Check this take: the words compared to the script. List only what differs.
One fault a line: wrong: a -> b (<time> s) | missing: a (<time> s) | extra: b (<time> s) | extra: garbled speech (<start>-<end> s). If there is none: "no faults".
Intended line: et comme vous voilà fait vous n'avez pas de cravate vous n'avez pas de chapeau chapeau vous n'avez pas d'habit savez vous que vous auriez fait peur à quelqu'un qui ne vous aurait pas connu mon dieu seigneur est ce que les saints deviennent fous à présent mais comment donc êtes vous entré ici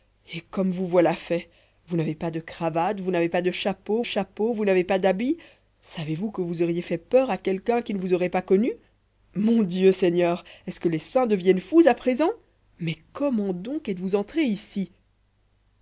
no faults